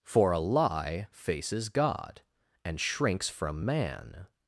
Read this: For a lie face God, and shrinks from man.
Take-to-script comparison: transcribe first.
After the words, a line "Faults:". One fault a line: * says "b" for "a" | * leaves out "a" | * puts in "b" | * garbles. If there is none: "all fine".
For a lie faces God, and shrinks from man.
Faults:
* says "faces" for "face"